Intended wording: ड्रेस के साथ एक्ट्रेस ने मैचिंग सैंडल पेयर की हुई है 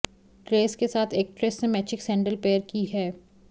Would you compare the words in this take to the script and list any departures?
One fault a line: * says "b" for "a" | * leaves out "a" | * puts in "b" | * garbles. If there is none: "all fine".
* leaves out "हुई"